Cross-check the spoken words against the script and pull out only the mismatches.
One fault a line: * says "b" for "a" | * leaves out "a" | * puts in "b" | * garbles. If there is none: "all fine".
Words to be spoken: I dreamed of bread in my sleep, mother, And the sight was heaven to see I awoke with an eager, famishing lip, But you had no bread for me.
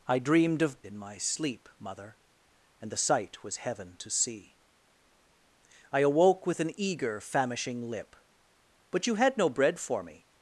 * leaves out "bread"